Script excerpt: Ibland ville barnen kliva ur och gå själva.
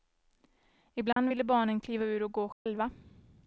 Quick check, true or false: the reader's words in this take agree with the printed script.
true